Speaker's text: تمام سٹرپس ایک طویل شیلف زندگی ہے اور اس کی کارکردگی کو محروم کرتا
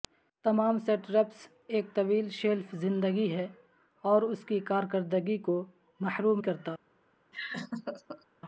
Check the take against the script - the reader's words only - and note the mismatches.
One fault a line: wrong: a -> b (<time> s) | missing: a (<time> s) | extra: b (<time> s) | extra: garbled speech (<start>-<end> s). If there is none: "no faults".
no faults